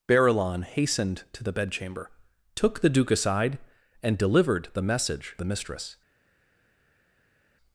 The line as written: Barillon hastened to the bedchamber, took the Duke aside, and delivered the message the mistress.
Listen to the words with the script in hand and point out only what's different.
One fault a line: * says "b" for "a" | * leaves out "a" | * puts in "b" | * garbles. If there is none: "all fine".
all fine